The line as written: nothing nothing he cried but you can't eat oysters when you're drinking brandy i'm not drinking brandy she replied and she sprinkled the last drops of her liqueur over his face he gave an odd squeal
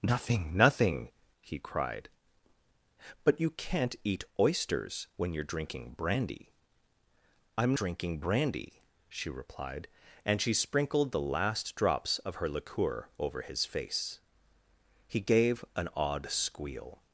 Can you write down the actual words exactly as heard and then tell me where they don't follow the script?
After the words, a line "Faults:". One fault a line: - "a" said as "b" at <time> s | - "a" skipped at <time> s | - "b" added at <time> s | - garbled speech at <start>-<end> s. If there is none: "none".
nothing nothing he cried but you can't eat oysters when you're drinking brandy i'm drinking brandy she replied and she sprinkled the last drops of her liqueur over his face he gave an odd squeal
Faults:
- "not" skipped at 7.8 s